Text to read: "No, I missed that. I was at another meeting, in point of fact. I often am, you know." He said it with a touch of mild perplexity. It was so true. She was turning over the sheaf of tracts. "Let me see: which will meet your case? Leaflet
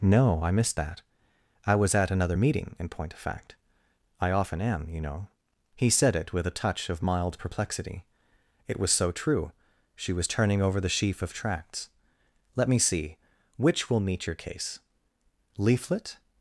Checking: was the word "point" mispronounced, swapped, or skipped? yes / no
no